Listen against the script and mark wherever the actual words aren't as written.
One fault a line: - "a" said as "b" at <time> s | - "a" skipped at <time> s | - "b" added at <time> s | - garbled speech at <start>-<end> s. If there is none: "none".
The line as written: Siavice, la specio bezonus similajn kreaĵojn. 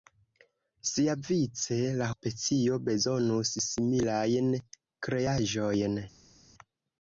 none